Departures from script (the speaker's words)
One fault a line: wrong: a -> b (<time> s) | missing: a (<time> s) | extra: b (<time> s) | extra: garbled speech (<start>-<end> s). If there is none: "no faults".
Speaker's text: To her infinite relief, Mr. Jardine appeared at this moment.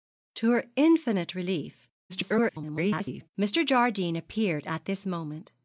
extra: garbled speech (2.1-3.3 s)